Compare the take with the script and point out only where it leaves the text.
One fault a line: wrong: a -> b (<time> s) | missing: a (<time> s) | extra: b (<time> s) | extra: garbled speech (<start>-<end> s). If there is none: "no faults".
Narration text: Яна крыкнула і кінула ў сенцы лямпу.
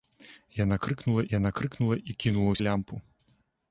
extra: яна крыкнула (1.4 s)
missing: сенцы (2.6 s)